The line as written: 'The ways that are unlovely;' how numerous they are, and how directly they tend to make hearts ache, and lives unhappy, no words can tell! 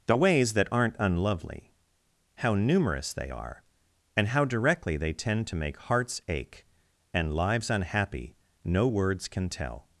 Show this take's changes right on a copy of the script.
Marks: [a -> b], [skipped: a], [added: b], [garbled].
'The ways that [are -> aren't] unlovely;' how numerous they are, and how directly they tend to make hearts ache, and lives unhappy, no words can tell!